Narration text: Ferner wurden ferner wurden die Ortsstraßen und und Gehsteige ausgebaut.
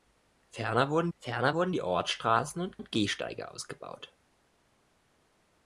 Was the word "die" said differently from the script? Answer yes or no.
no